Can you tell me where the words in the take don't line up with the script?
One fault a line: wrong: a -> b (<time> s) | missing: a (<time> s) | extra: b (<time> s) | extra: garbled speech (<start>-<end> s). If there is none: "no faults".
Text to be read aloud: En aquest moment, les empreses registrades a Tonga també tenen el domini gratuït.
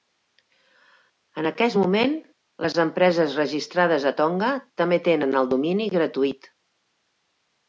no faults